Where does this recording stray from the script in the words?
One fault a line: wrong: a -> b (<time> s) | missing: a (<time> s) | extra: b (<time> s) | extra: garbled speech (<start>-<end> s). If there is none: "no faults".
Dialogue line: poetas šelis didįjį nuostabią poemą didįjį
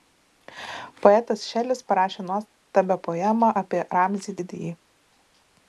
wrong: didįjį -> parašė (1.9 s)
extra: apie ramzį (3.6 s)